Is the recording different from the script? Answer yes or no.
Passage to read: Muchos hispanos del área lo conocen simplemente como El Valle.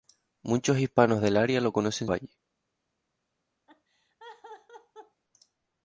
yes